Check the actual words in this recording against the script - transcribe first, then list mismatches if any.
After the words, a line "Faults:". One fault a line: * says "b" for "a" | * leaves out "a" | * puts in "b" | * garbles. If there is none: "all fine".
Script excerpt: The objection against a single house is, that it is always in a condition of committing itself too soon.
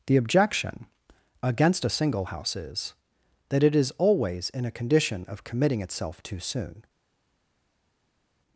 The objection against a single house is, that it is always in a condition of committing itself too soon.
Faults:
all fine